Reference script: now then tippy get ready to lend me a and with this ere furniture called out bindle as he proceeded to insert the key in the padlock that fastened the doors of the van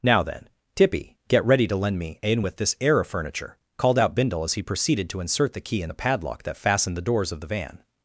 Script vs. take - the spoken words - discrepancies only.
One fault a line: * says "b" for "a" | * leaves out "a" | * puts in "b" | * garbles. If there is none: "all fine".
* says "in" for "a and"
* says "air of" for "ere"